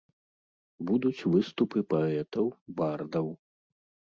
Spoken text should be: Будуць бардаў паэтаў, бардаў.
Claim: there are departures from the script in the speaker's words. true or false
true